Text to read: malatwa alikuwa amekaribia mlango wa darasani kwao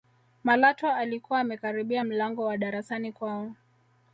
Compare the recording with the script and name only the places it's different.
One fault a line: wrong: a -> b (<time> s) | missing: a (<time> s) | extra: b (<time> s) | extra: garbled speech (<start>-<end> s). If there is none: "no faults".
no faults